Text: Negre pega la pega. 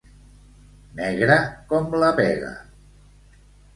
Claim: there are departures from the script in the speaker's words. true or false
true